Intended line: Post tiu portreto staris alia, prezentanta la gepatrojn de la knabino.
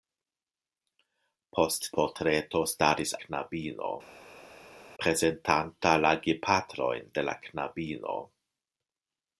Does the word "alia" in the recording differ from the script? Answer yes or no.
yes